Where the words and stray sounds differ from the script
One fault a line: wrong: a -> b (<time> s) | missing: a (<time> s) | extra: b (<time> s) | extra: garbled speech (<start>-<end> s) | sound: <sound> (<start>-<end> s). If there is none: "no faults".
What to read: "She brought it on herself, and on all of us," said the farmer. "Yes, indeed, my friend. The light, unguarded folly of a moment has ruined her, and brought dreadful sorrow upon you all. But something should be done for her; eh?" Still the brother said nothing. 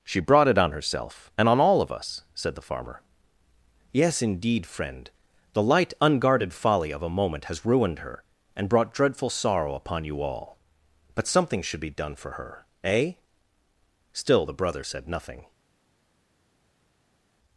missing: my (4.6 s)